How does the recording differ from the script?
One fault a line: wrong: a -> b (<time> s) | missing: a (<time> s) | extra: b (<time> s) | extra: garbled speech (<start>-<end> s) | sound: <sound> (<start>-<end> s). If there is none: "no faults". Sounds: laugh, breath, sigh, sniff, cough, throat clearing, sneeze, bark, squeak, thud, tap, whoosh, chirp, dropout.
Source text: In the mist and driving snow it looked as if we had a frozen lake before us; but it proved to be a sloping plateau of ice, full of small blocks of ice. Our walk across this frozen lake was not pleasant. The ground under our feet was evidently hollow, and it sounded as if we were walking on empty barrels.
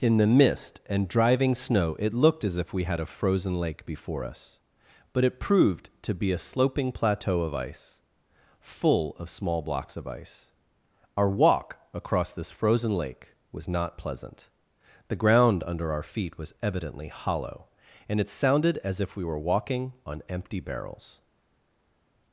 no faults